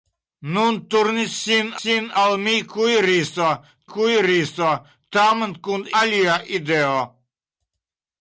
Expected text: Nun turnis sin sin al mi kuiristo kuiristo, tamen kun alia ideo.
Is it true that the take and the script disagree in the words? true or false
false